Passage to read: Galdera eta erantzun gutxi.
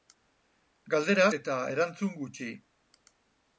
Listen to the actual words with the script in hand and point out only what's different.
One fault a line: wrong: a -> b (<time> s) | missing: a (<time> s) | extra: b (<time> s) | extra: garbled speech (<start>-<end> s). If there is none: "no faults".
no faults